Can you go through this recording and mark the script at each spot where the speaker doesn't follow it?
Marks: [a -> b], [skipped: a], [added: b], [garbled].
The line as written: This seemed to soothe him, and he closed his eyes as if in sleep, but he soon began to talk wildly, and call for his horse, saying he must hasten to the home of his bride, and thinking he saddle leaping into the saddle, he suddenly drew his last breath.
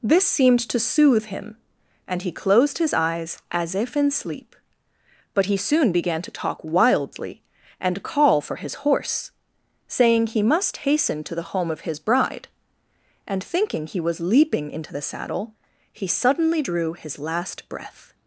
This seemed to soothe him, and he closed his eyes as if in sleep, but he soon began to talk wildly, and call for his horse, saying he must hasten to the home of his bride, and thinking he [saddle -> was] leaping into the saddle, he suddenly drew his last breath.